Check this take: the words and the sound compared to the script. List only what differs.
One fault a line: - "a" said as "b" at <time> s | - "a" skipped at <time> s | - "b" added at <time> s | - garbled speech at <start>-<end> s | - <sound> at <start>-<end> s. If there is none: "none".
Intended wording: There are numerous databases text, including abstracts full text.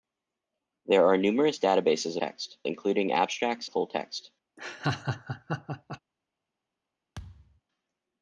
- laugh at 4.6-6.0 s
- thud at 7.2-7.6 s